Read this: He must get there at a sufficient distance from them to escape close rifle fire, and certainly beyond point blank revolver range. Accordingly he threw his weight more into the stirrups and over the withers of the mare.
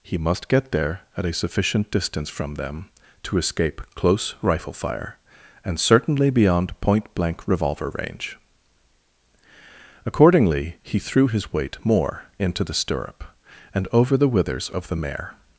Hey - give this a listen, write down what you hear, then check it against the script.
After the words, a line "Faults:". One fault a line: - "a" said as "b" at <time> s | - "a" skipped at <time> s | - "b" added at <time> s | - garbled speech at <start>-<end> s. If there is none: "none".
He must get there at a sufficient distance from them to escape close rifle fire, and certainly beyond point blank revolver range. Accordingly he threw his weight more into the stirrup and over the withers of the mare.
Faults:
- "stirrups" said as "stirrup" at 12.7 s